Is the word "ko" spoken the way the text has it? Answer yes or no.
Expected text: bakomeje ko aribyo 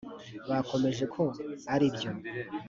yes